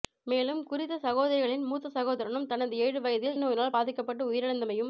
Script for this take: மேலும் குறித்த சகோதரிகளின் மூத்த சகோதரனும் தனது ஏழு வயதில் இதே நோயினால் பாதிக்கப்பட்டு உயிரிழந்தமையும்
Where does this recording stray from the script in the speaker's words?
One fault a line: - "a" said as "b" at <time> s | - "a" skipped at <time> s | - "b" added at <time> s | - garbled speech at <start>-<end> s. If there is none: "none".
- "இதே" skipped at 3.4 s